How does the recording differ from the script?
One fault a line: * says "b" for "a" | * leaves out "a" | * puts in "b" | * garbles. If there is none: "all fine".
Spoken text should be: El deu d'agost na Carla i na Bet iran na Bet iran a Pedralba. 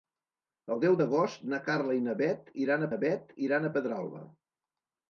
all fine